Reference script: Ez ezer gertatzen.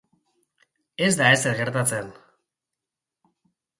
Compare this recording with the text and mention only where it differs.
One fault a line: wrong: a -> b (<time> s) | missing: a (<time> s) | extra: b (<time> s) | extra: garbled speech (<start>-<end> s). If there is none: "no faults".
extra: da (1.2 s)